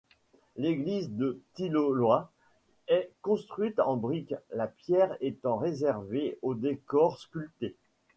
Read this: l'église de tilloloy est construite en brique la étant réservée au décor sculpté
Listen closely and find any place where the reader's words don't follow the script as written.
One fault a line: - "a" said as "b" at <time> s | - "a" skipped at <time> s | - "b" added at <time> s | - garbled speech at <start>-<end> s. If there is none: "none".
- "pierre" added at 4.7 s